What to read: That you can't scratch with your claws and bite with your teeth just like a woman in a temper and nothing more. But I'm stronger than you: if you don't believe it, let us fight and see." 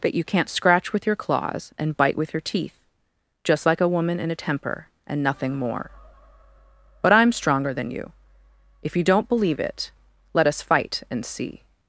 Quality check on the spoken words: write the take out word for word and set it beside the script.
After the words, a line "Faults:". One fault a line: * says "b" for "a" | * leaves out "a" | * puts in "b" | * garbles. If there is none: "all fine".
That you can't scratch with your claws and bite with your teeth just like a woman in a temper and nothing more. But I'm stronger than you: if you don't believe it, let us fight and see."
Faults:
all fine